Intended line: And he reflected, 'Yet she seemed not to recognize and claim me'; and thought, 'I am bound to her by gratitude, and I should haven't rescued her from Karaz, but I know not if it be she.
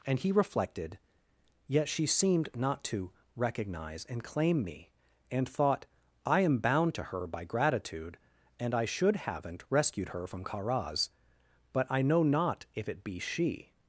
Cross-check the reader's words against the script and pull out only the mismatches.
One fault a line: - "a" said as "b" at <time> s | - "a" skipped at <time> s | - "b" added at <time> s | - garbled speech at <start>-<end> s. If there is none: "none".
none